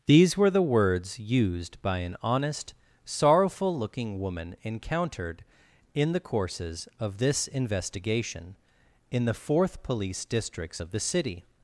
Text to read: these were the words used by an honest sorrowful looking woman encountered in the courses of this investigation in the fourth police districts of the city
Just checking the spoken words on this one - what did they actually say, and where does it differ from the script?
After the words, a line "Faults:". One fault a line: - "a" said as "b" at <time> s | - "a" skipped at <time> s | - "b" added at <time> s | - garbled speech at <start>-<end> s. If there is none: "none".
these were the words used by an honest sorrowful looking woman encountered in the courses of this investigation in the fourth police districts of the city
Faults:
none